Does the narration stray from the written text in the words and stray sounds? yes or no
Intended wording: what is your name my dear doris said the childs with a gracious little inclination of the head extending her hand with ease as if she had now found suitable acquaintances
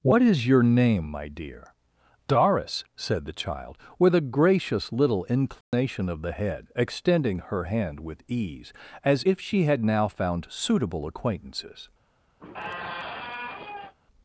yes